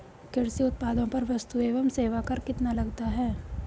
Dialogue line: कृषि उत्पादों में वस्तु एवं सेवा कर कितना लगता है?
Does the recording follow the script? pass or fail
fail